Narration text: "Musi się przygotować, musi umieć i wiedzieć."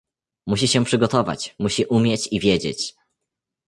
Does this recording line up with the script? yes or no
yes